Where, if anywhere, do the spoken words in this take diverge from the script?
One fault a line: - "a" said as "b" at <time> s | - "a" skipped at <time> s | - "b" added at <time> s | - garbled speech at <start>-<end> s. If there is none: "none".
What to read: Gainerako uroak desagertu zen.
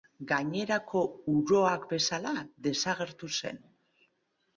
- "bezala" added at 1.9 s